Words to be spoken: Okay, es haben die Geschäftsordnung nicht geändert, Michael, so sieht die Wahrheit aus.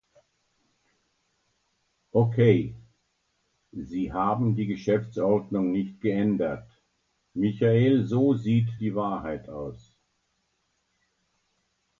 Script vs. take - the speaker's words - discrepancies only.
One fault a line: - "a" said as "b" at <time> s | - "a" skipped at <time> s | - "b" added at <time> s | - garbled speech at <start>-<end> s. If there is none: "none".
- "es" said as "sie" at 3.7 s